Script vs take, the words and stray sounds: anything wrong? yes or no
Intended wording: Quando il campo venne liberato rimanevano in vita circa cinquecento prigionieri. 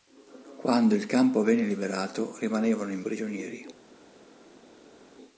yes